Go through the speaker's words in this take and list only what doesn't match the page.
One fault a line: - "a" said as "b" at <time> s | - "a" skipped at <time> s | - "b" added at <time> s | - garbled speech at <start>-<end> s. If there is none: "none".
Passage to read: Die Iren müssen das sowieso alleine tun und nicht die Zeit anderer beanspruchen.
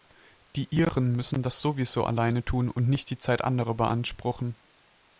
none